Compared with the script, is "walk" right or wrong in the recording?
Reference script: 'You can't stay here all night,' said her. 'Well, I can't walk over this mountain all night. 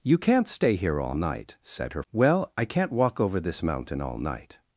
right